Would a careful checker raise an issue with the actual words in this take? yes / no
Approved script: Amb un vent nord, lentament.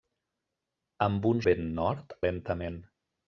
no